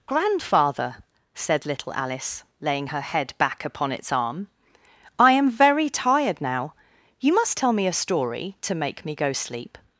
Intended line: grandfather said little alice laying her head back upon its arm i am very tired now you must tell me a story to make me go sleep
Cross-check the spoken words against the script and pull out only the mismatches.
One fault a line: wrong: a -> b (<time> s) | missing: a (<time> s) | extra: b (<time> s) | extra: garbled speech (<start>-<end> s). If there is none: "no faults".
no faults